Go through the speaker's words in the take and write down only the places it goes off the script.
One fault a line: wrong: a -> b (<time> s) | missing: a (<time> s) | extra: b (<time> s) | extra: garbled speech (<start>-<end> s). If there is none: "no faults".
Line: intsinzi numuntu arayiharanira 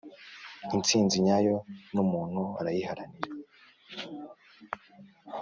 extra: nyayo (1.2 s)